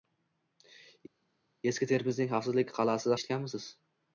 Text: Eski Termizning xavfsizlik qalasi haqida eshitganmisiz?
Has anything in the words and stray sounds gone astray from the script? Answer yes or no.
yes